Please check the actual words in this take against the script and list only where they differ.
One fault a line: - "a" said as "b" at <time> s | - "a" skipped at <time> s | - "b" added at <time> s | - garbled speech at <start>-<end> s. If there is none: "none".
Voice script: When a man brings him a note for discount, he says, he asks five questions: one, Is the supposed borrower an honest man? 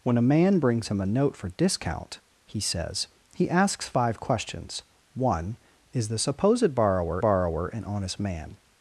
- "borrower" added at 7.2 s